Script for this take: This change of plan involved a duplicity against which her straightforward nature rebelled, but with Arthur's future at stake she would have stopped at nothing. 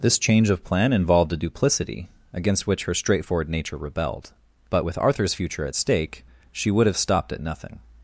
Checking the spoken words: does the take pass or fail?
pass